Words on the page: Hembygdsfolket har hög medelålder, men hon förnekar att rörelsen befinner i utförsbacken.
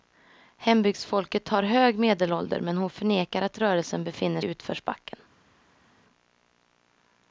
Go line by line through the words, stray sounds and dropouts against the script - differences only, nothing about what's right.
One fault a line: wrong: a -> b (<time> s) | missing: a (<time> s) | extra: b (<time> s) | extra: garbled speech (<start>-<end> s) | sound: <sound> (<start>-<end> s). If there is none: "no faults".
no faults